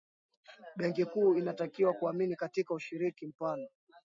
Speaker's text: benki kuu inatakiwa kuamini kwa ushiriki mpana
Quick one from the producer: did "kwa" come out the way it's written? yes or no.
no